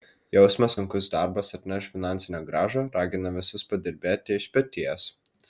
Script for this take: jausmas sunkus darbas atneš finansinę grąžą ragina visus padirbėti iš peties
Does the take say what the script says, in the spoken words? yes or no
yes